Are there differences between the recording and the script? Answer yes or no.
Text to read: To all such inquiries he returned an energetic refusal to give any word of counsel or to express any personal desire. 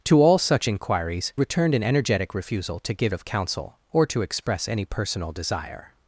yes